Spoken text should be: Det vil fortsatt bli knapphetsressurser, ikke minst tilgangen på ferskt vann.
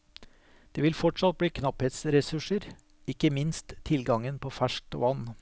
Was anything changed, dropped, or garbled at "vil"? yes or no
no